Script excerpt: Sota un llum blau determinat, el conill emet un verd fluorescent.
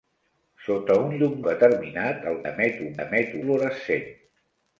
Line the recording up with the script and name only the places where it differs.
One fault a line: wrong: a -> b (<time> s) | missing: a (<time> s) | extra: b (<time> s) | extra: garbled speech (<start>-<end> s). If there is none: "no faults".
missing: blau (1.4 s)
missing: conill (2.4 s)
wrong: verd -> emet (3.0 s)